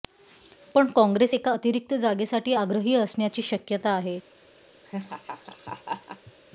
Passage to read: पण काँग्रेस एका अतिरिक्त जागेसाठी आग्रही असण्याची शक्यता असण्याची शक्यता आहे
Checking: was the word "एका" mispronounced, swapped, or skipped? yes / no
no